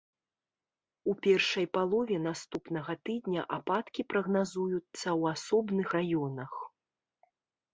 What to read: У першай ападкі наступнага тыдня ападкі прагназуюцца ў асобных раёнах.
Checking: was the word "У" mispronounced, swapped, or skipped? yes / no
no